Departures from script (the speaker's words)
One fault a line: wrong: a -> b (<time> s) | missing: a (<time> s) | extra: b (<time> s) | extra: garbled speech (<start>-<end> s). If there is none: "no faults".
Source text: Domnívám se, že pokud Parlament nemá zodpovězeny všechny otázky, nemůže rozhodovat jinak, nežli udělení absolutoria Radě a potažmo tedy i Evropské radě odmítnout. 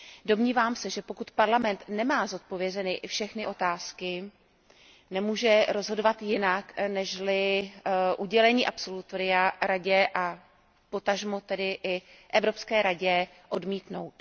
no faults